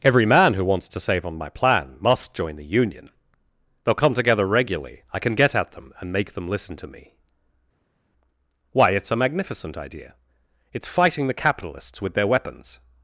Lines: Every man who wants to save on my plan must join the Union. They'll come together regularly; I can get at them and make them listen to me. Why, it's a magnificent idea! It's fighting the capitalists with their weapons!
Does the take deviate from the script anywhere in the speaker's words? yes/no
no